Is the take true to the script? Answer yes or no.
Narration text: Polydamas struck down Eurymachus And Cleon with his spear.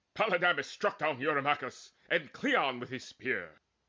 yes